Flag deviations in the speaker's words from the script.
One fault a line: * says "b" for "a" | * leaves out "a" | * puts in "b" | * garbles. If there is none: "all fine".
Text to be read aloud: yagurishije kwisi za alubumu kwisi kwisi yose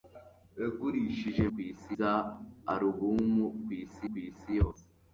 all fine